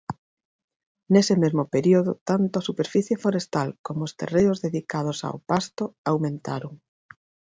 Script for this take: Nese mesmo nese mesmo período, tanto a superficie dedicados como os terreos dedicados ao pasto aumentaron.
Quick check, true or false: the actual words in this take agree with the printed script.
false